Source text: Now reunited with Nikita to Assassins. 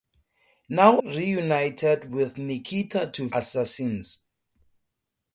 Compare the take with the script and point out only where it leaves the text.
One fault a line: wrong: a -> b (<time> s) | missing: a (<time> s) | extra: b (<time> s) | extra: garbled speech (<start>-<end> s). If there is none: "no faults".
no faults